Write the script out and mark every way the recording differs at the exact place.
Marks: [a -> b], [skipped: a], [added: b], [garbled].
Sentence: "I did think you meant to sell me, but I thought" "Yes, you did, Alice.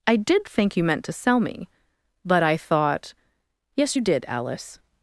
"I did think you meant to sell me, but I thought" "Yes, you did, Alice.